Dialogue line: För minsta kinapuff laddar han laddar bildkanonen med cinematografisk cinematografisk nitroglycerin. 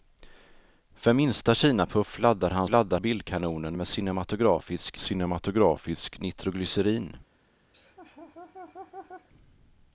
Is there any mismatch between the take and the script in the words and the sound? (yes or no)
yes